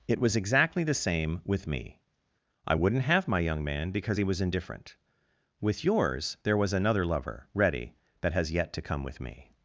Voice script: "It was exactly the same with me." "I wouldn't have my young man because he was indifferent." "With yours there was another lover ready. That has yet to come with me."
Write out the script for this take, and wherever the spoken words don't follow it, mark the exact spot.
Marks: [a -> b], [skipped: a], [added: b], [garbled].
"It was exactly the same with me." "I wouldn't have my young man because he was indifferent." "With yours there was another lover ready. That has yet to come with me."